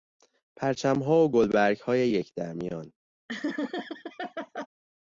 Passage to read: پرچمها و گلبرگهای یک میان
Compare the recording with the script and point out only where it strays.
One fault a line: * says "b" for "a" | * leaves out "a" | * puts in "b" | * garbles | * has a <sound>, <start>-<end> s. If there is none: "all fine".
* puts in "در"
* has a laugh, 3.3-4.7 s